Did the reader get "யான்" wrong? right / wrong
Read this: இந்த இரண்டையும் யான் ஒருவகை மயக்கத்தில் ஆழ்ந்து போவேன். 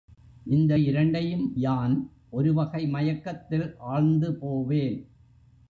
right